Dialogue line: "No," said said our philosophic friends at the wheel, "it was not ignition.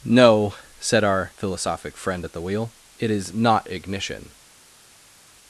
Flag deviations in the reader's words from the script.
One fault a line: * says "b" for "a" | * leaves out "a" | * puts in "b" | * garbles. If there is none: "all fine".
* leaves out "said"
* says "friend" for "friends"
* says "is" for "was"